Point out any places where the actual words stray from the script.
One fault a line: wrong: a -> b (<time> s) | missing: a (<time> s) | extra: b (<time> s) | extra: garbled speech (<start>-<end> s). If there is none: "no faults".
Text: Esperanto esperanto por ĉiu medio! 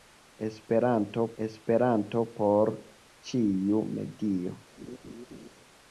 no faults